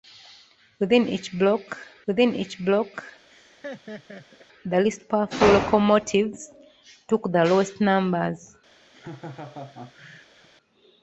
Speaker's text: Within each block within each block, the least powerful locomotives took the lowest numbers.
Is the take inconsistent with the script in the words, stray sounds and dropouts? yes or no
yes